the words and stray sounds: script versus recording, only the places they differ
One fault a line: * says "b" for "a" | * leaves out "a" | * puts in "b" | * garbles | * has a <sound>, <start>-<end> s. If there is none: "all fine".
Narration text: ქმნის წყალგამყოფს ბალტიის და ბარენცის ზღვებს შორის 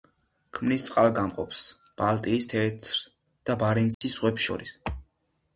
* puts in "თეთრ"
* has a dropout, 3.9-4.0 s